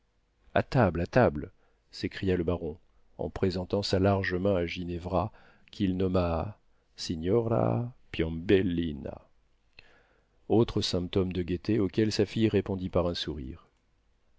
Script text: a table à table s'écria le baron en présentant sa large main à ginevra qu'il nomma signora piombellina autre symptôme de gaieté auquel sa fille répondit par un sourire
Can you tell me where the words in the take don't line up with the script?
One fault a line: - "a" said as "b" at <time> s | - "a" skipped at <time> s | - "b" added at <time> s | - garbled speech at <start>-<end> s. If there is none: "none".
none